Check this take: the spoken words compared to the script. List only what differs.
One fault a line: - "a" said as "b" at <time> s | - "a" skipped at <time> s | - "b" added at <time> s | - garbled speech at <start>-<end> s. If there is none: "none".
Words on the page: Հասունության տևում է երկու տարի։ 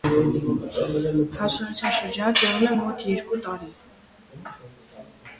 - "շրջանը" added at 2.0 s
- "մոտ" added at 2.8 s